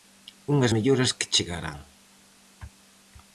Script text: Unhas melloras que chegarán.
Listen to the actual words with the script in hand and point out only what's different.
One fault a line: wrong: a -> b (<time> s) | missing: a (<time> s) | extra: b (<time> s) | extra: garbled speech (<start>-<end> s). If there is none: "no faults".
no faults